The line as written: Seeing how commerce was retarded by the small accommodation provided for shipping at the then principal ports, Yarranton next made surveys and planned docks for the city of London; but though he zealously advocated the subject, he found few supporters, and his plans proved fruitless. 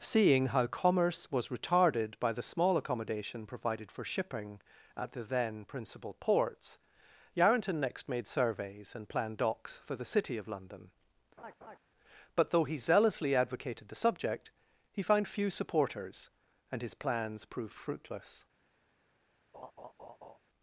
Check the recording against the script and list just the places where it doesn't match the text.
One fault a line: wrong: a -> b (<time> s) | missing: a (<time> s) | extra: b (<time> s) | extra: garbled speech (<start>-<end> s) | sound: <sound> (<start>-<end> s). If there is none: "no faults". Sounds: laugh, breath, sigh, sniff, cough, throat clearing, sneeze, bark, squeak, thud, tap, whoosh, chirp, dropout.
sound: laugh (11.4-11.8 s)
sound: laugh (19.5-20.4 s)